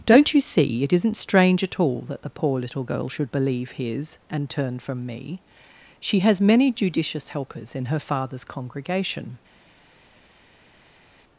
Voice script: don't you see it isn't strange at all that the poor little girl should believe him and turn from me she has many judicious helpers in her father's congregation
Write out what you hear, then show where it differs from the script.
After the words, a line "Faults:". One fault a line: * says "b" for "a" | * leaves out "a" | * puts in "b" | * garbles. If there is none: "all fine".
don't you see it isn't strange at all that the poor little girl should believe his and turn from me she has many judicious helpers in her father's congregation
Faults:
* says "his" for "him"